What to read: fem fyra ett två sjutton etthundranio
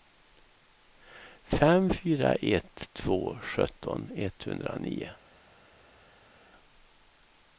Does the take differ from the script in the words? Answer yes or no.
no